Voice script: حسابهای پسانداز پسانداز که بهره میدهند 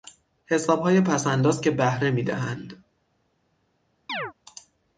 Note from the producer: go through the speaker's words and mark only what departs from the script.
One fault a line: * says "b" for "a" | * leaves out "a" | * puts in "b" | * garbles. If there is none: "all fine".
* leaves out "پسانداز"